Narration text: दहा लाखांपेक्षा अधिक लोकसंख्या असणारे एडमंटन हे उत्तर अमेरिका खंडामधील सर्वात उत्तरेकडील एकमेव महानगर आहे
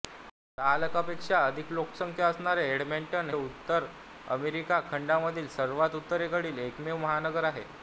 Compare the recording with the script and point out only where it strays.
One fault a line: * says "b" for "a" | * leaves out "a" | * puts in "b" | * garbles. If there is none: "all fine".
* leaves out "हे"